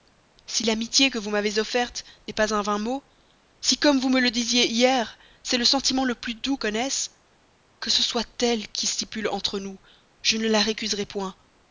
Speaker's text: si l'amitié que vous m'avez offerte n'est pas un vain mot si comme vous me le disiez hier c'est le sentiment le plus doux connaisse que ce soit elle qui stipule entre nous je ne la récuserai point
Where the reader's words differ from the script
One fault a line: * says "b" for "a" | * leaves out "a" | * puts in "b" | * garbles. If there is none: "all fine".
all fine